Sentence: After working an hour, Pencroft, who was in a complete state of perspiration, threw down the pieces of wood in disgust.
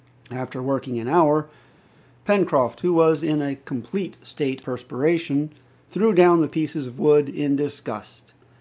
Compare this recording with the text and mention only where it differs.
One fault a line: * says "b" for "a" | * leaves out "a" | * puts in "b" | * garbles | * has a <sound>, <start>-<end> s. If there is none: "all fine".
* leaves out "of"